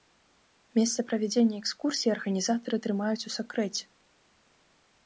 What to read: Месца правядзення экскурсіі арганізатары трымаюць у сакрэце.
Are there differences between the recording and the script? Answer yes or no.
no